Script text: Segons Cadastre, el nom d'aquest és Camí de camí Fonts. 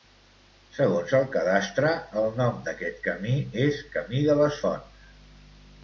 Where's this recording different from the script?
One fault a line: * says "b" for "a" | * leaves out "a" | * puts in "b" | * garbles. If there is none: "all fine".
* puts in "el"
* puts in "camí"
* says "les" for "camí"